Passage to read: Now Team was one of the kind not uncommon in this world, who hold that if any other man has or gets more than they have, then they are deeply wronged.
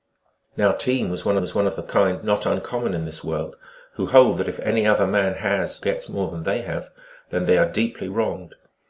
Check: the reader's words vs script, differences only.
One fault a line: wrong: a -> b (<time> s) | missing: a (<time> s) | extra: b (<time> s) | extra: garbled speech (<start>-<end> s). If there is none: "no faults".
extra: was one (1.4 s)
missing: or (5.8 s)